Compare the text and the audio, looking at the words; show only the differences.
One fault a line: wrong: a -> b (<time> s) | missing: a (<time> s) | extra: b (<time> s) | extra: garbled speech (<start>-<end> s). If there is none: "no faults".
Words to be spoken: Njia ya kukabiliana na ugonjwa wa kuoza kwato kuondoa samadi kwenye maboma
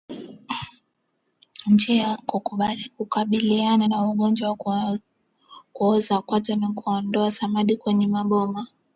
extra: ni (6.5 s)